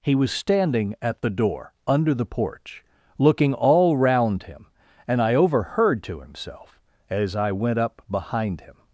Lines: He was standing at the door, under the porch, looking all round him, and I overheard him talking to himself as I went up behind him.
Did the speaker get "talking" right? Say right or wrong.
wrong